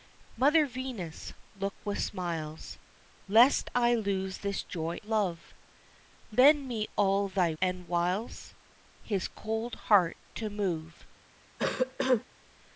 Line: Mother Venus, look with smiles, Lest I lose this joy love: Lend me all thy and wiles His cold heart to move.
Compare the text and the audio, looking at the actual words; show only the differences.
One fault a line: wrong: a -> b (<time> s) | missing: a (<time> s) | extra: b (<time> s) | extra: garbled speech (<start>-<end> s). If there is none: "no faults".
no faults